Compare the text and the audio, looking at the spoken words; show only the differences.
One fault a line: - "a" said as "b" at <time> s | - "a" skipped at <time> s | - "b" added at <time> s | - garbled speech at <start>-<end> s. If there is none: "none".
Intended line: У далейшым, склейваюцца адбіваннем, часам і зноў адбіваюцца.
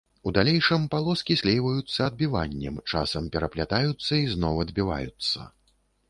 - "палоскі" added at 0.9 s
- "пераплятаюцца" added at 3.4 s